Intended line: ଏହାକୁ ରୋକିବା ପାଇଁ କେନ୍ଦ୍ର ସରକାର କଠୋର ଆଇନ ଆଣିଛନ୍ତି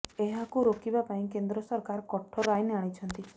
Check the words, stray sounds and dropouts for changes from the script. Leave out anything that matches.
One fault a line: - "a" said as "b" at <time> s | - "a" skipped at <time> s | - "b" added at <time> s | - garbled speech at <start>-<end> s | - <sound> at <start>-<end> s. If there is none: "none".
none